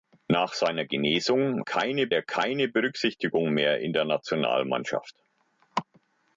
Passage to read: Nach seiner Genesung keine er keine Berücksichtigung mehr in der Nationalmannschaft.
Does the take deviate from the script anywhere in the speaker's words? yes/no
no